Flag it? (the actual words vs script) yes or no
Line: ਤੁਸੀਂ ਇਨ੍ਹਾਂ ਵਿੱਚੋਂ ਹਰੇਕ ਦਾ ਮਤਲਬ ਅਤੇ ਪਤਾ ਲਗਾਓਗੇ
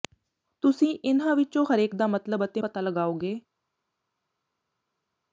no